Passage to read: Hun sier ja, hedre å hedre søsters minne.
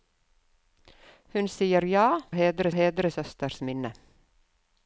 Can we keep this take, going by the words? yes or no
yes